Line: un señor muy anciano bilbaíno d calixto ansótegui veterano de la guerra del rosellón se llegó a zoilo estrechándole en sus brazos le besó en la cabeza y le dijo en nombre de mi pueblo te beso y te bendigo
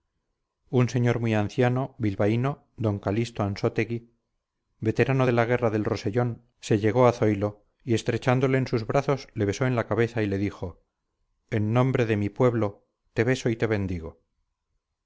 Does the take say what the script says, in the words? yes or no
no